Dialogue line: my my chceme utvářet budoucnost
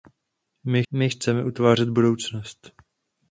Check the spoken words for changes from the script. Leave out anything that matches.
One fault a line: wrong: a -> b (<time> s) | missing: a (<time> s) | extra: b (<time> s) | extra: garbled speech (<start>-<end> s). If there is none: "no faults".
no faults